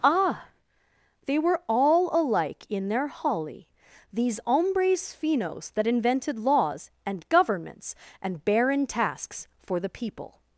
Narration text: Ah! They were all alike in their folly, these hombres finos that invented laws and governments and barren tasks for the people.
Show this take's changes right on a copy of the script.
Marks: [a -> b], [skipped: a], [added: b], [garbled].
Ah! They were all alike in their [folly, -> holly] these hombres finos that invented laws and governments and barren tasks for the people.